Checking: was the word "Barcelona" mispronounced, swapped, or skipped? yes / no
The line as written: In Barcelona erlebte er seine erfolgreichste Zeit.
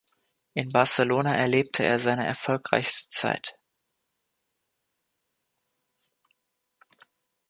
no